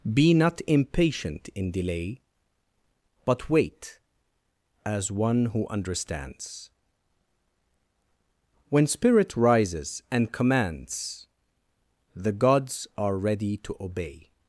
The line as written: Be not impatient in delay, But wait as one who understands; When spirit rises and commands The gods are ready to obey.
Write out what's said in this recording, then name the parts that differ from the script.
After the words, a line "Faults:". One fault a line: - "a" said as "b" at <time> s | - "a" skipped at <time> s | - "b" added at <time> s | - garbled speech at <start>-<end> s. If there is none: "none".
Be not impatient in delay, But wait as one who understands; When spirit rises and commands The gods are ready to obey.
Faults:
none